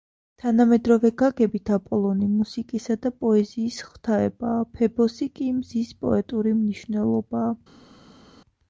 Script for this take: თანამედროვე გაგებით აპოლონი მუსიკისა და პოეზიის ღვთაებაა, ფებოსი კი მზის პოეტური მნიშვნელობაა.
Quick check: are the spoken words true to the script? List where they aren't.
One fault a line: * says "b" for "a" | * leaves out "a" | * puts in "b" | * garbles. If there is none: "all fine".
all fine